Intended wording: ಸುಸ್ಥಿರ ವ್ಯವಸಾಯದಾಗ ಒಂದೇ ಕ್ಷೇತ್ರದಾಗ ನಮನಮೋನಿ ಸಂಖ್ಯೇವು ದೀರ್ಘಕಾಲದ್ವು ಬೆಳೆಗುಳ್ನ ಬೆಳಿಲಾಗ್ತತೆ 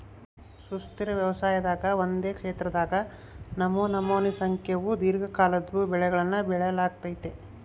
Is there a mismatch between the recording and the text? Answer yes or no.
no